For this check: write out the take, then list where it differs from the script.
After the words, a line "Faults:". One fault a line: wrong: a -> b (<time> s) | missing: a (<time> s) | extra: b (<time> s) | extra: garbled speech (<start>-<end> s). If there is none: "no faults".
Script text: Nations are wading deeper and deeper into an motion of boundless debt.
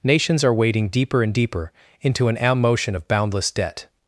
Nations are wading deeper and deeper into an motion of boundless debt.
Faults:
no faults